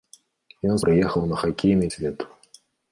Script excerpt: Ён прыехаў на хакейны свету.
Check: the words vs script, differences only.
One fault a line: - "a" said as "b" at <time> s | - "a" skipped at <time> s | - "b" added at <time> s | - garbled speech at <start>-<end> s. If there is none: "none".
none